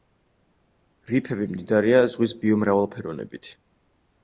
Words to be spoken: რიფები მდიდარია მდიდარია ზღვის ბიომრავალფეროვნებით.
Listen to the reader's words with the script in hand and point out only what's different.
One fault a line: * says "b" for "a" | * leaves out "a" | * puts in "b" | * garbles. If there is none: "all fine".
* leaves out "მდიდარია"